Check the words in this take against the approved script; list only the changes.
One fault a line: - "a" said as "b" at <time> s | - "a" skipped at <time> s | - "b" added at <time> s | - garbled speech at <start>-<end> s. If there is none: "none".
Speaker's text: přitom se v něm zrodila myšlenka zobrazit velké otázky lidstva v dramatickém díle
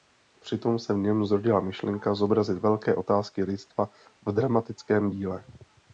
none